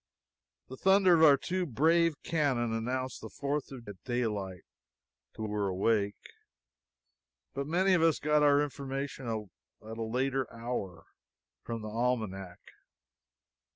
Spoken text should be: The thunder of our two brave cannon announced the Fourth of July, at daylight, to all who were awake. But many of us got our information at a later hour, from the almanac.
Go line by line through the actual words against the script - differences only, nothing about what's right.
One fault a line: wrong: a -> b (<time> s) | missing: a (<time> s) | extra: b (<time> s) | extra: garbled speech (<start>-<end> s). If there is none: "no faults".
missing: July (3.9 s)
missing: all who (5.5 s)